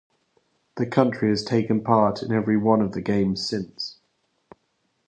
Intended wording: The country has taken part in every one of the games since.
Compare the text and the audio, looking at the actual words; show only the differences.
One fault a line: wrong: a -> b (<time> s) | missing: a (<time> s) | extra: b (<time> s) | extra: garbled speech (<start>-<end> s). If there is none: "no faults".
no faults